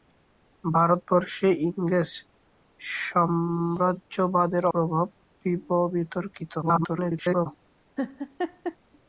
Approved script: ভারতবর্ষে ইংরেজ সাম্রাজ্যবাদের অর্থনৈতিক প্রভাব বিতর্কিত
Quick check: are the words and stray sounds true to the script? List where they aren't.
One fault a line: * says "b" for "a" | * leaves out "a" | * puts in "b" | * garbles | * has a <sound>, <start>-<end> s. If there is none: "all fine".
* leaves out "অর্থনৈতিক"
* garbles
* has a laugh, 8.0-8.8 s